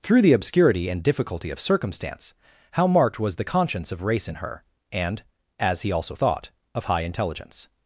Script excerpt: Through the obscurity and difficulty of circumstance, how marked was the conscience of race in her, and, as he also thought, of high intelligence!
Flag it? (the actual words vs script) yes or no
no